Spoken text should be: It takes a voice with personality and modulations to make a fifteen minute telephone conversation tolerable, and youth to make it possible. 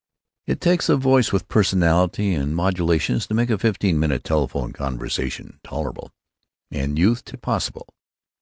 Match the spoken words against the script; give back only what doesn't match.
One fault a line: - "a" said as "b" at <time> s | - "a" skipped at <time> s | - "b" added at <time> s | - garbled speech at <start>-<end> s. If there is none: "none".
- "make" skipped at 7.3 s